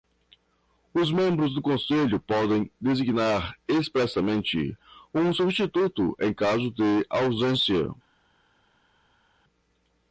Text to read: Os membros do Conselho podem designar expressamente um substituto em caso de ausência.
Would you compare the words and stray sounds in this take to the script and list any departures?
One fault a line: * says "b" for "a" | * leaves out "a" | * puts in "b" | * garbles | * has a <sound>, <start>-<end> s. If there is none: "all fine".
all fine